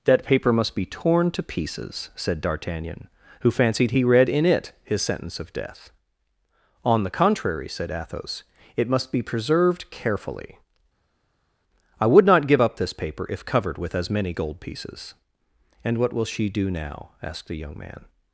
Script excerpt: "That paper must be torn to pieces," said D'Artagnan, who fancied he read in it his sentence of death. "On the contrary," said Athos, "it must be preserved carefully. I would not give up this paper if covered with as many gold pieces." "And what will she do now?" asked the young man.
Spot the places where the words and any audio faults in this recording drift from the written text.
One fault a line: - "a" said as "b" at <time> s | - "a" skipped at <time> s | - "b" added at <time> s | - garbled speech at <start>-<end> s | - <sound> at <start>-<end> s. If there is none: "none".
none